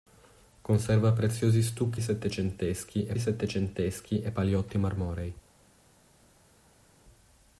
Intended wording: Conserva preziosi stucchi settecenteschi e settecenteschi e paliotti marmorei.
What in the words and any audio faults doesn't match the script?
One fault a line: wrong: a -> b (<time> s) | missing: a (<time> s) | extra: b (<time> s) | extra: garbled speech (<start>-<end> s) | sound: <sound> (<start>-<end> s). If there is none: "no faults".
no faults